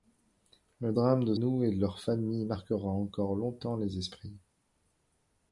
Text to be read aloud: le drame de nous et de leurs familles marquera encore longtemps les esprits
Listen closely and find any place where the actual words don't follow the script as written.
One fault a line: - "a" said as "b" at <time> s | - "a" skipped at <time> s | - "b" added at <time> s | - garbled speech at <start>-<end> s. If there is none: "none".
none